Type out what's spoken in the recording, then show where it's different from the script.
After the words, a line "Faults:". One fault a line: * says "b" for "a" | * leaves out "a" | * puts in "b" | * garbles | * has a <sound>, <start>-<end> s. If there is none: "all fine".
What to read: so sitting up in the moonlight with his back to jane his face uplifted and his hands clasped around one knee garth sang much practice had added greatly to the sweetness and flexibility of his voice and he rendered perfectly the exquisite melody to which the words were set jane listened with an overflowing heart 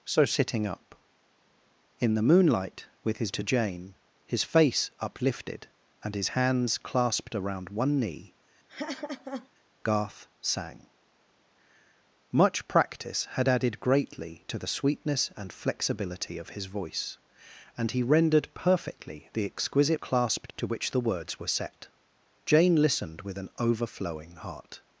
so sitting up in the moonlight with his to jane his face uplifted and his hands clasped around one knee garth sang much practice had added greatly to the sweetness and flexibility of his voice and he rendered perfectly the exquisite clasped to which the words were set jane listened with an overflowing heart
Faults:
* leaves out "back"
* has a laugh, 8.7-9.5 s
* says "clasped" for "melody"